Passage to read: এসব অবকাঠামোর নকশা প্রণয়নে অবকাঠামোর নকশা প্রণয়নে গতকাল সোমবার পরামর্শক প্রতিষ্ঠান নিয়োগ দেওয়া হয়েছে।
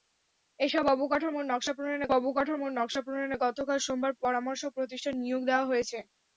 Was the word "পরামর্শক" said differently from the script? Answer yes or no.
no